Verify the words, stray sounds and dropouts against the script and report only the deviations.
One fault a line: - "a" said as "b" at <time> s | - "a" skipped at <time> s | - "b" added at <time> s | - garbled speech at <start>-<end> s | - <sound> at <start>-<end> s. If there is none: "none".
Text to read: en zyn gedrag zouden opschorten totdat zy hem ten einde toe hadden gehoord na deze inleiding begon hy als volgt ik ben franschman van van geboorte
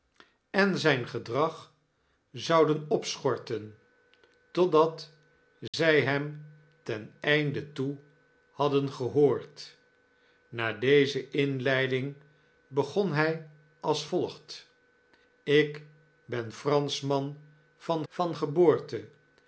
- dropout at 5.7-5.7 s